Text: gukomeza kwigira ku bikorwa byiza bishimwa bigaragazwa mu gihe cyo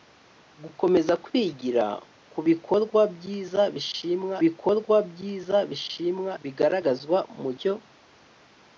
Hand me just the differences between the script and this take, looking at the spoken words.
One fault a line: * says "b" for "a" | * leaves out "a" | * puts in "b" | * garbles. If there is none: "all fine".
* puts in "bikorwa byiza bishimwa"
* leaves out "gihe"